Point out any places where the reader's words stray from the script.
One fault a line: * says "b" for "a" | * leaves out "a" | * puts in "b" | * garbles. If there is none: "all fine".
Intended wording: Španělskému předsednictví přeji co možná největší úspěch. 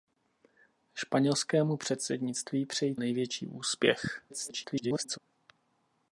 * leaves out "co možná"
* garbles